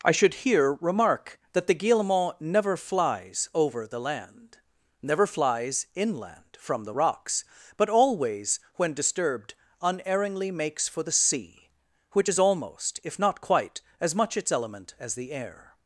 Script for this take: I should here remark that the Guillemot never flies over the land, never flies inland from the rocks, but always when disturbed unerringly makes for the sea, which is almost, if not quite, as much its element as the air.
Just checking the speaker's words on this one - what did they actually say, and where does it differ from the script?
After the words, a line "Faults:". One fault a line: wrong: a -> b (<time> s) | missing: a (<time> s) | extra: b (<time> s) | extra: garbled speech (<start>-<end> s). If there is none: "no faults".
I should here remark that the Guillemot never flies over the land, never flies inland from the rocks, but always when disturbed unerringly makes for the sea, which is almost, if not quite, as much its element as the air.
Faults:
no faults